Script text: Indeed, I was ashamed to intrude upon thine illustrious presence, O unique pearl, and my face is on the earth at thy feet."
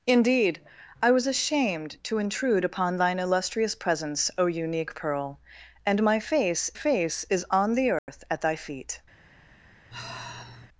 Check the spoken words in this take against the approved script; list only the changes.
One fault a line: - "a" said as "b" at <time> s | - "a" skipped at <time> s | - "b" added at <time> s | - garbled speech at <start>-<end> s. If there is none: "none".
- "face" added at 6.7 s